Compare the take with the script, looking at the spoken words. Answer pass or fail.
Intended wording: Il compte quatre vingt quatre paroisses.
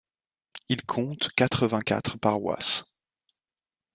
pass